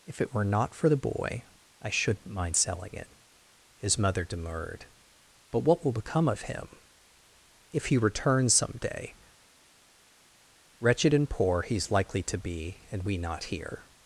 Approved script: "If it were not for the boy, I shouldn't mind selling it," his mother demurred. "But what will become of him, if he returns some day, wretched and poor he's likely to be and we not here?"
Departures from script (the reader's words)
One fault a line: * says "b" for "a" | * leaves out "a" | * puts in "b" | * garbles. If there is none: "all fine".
all fine